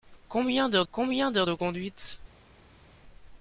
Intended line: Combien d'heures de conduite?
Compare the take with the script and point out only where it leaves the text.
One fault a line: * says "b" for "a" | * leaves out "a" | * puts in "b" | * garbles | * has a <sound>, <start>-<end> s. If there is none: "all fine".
* puts in "combien d'heures"